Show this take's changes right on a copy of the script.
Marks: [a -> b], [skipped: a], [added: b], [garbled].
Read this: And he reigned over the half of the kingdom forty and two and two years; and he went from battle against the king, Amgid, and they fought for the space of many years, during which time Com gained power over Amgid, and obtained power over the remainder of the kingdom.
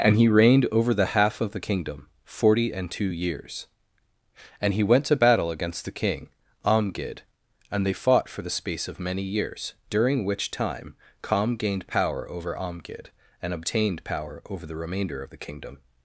And he reigned over the half of the kingdom forty and two [skipped: and two] years; and he went [from -> to] battle against the king, Amgid, and they fought for the space of many years, during which time Com gained power over Amgid, and obtained power over the remainder of the kingdom.